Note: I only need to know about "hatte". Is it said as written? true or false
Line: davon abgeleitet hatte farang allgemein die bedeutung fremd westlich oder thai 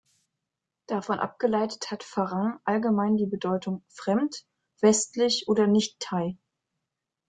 false